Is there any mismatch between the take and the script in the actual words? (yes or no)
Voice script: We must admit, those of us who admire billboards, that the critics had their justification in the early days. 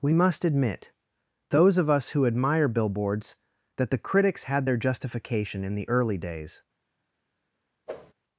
no